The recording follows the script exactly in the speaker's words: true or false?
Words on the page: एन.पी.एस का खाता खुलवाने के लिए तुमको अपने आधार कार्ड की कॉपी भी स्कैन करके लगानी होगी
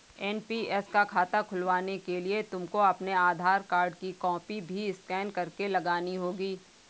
true